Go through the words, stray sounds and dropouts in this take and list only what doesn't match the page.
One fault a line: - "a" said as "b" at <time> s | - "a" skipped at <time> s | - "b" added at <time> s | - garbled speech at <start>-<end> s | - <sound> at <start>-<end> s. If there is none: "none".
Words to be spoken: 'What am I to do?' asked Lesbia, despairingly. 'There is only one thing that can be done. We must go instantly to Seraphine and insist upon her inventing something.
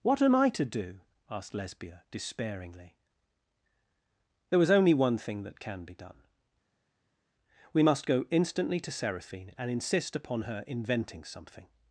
- "is" said as "was" at 4.6 s